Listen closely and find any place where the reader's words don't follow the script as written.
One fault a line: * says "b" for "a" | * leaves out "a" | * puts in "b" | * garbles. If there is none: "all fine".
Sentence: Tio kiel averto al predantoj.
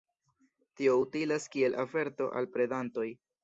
* puts in "utilas"